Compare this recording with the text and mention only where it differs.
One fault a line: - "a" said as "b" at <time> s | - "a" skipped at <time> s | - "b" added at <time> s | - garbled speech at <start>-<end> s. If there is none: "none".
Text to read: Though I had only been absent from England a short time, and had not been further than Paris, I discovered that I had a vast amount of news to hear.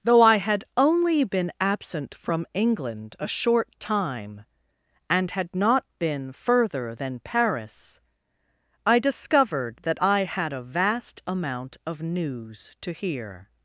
none